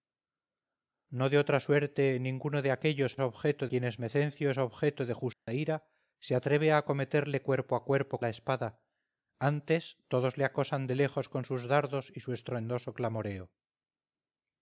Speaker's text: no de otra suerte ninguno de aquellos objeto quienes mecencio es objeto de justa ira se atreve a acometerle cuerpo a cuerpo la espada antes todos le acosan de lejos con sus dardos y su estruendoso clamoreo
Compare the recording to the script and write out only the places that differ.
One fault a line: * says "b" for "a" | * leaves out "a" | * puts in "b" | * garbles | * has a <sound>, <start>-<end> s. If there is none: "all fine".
* has a dropout, 5.3-5.5 s